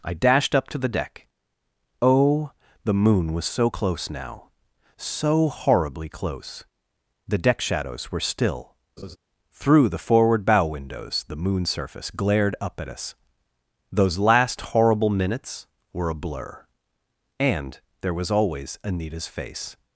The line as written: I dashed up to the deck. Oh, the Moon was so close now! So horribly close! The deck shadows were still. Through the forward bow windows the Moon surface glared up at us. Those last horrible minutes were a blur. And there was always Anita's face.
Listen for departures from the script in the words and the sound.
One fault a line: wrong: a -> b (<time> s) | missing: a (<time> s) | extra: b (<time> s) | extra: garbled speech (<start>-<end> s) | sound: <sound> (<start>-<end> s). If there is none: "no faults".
sound: laugh (9.0-9.2 s)